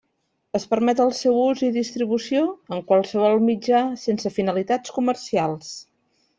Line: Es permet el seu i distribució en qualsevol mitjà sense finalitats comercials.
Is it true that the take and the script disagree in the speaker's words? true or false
true